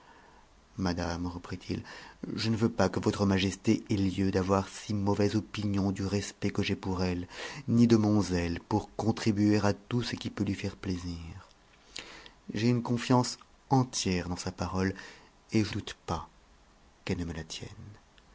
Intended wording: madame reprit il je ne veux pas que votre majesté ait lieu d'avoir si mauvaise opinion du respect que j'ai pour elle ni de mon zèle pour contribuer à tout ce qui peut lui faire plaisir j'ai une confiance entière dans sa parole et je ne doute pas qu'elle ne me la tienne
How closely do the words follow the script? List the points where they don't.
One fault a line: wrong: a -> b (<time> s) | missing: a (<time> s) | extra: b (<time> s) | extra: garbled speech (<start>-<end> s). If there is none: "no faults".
missing: ne (15.8 s)